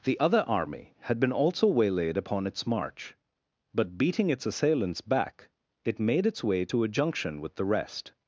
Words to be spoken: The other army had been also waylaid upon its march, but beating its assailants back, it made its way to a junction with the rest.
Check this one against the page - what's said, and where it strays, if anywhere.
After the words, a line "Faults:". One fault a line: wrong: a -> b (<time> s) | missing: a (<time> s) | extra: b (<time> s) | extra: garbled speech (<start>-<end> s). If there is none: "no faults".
The other army had been also waylaid upon its march, but beating its assailants back, it made its way to a junction with the rest.
Faults:
no faults